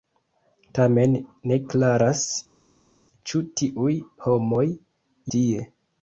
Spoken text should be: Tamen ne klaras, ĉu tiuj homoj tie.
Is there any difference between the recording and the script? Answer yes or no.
no